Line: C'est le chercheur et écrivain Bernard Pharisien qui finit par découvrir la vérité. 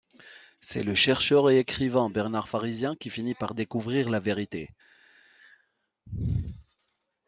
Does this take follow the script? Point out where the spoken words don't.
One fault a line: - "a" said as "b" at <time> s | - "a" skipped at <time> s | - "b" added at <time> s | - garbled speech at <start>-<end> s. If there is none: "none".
none